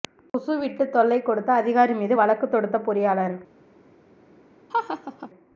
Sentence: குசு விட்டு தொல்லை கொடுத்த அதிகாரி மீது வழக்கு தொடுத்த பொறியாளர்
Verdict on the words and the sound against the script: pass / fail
fail